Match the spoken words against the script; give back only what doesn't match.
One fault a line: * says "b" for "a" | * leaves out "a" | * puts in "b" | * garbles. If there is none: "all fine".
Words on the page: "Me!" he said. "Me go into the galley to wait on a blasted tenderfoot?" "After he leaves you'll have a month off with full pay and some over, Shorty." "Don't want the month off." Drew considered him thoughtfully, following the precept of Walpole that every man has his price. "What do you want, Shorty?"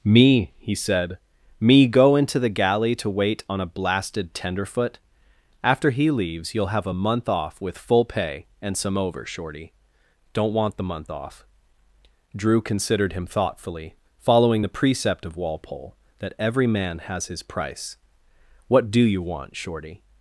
all fine